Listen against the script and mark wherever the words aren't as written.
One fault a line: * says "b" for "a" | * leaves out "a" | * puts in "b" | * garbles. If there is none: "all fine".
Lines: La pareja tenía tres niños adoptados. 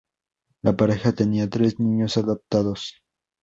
all fine